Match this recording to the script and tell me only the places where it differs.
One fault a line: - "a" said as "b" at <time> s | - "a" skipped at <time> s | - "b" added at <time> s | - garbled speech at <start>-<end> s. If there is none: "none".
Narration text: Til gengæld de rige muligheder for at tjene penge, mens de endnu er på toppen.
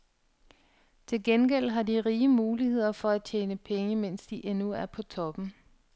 - "har" added at 1.7 s